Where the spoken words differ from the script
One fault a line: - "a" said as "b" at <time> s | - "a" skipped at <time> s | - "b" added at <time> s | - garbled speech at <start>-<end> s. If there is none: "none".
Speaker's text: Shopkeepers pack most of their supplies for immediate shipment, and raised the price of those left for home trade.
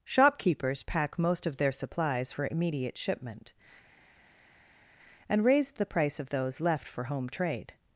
none